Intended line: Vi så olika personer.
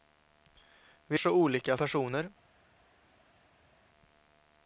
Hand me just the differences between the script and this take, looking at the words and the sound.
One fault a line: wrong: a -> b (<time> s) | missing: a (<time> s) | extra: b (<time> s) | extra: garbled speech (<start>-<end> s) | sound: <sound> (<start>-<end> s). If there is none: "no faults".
no faults